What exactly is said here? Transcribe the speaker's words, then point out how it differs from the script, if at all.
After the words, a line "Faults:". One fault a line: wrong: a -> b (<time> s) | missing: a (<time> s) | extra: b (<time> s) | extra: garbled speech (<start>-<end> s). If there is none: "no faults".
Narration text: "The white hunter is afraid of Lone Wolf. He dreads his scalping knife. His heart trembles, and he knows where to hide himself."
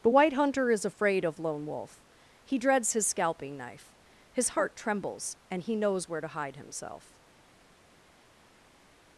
"The white hunter is afraid of Lone Wolf. He dreads his scalping knife. His heart trembles, and he knows where to hide himself."
Faults:
no faults